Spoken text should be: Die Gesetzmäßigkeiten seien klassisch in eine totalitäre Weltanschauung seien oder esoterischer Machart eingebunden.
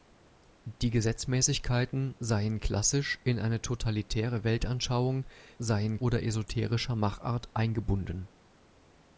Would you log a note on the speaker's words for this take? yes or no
no